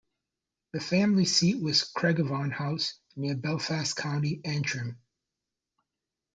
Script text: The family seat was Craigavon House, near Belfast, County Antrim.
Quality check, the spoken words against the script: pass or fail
pass